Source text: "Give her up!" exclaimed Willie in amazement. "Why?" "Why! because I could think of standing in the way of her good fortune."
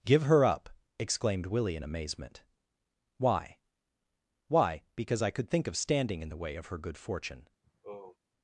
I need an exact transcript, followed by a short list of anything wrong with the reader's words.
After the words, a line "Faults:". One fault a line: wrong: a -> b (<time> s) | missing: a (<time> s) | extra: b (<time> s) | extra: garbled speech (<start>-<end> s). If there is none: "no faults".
"Give her up!" exclaimed Willie in amazement. "Why?" "Why! because I could think of standing in the way of her good fortune."
Faults:
no faults